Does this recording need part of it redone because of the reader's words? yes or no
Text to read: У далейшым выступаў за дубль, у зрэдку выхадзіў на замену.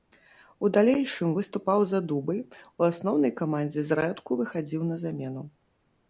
yes